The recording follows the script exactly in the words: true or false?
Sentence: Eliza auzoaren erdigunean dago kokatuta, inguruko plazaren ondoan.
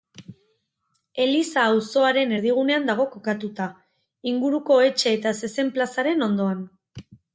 false